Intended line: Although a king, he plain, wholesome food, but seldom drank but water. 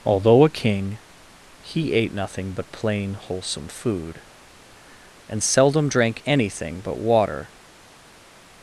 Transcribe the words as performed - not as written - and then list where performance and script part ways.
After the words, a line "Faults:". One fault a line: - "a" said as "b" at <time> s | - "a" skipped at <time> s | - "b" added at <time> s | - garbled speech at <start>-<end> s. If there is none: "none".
Although a king, he ate nothing but plain, wholesome food, and seldom drank anything but water.
Faults:
- "ate nothing but" added at 1.9 s
- "but" said as "and" at 5.3 s
- "anything" added at 6.2 s